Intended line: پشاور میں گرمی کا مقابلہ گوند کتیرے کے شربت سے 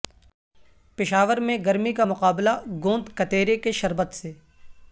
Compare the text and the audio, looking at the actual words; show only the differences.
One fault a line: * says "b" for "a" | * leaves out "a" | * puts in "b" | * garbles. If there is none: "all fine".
all fine